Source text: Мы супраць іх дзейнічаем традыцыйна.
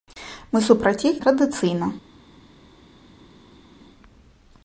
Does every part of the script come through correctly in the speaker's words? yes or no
no